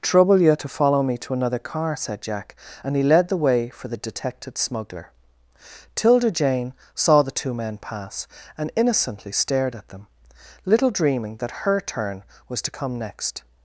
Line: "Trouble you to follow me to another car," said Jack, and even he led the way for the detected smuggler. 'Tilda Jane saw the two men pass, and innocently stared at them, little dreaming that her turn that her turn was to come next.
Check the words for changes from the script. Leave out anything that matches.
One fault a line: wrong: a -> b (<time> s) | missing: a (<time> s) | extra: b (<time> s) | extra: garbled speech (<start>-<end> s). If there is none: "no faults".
missing: even (2.9 s)
missing: that her turn (12.2 s)